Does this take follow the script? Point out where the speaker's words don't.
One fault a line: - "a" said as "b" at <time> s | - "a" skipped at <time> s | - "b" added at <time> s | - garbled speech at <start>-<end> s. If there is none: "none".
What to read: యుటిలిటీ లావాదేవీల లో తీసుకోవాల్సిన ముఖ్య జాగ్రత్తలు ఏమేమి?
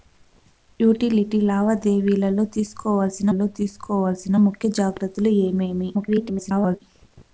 - "లో తీసుకోవాల్సిన" added at 3.3 s
- garbled speech at 5.9-6.8 s